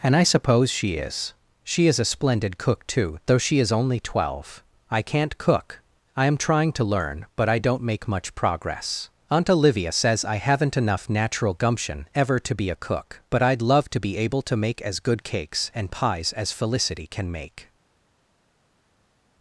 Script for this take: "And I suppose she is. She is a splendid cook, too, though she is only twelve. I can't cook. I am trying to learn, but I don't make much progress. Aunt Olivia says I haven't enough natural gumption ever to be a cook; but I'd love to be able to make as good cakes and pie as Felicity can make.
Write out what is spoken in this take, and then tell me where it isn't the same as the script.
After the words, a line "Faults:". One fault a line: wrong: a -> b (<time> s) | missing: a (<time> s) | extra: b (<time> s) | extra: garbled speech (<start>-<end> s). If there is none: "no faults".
"And I suppose she is. She is a splendid cook, too, though she is only twelve. I can't cook. I am trying to learn, but I don't make much progress. Aunt Olivia says I haven't enough natural gumption ever to be a cook; but I'd love to be able to make as good cakes and pies as Felicity can make.
Faults:
wrong: pie -> pies (15.9 s)